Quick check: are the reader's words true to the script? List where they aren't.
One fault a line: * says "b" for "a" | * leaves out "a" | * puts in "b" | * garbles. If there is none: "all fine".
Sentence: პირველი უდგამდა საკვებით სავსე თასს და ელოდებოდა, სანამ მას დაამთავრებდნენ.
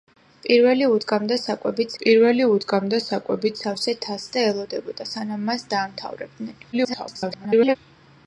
* puts in "პირველი უდგამდა საკვებით"
* garbles